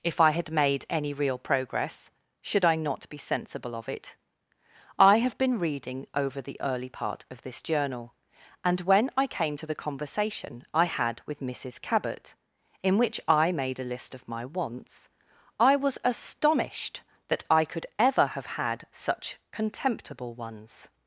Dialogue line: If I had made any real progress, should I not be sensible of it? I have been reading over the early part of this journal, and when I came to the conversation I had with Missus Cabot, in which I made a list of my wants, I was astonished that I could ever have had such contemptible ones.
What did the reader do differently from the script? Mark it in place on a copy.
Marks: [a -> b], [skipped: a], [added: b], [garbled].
If I had made any real progress, should I not be sensible of it? I have been reading over the early part of this journal, and when I came to the conversation I had with Missus Cabot, in which I made a list of my wants, I was astonished that I could ever have had such contemptible ones.